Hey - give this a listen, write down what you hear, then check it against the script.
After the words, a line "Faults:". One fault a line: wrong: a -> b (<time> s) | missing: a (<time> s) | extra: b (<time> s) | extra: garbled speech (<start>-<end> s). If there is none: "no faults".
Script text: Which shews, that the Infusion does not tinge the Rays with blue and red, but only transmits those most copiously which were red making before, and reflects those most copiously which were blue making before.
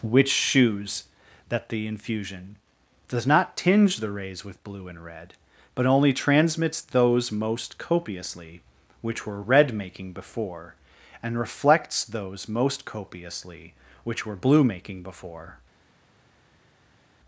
Which shews, that the Infusion does not tinge the Rays with blue and red, but only transmits those most copiously which were red making before, and reflects those most copiously which were blue making before.
Faults:
no faults